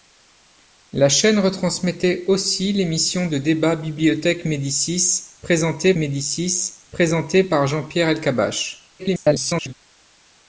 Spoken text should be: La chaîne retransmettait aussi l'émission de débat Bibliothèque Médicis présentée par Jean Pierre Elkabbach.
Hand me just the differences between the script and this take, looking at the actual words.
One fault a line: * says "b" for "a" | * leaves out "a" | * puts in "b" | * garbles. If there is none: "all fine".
* puts in "Médicis présentée"
* garbles